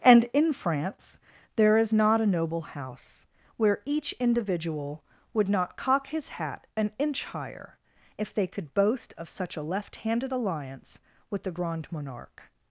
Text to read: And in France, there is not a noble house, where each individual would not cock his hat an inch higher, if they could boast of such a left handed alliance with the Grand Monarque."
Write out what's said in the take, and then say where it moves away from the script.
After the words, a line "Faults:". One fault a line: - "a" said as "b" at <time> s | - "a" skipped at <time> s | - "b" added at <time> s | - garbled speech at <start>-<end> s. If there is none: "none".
And in France, there is not a noble house, where each individual would not cock his hat an inch higher, if they could boast of such a left handed alliance with the Grand Monarque."
Faults:
none